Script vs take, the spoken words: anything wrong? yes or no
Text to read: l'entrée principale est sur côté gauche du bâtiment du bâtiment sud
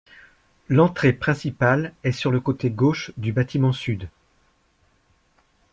yes